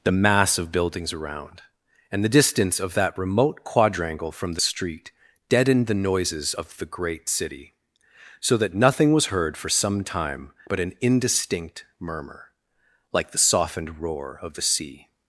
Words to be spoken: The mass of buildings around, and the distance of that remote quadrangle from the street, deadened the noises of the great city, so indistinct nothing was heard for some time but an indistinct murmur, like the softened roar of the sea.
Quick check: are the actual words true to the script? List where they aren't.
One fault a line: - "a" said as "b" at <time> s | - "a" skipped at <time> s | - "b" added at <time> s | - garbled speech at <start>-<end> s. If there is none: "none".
- "indistinct" said as "that" at 8.6 s